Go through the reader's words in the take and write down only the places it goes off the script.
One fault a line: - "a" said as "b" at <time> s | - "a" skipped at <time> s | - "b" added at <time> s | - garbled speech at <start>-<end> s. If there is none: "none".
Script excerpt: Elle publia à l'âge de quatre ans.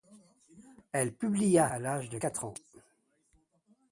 none